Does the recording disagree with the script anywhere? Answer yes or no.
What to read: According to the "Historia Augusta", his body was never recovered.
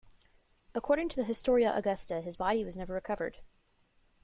no